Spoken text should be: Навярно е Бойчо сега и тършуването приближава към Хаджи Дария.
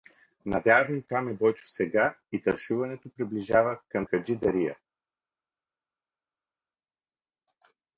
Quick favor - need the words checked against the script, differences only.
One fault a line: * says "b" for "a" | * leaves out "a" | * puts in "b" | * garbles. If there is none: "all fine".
* puts in "там"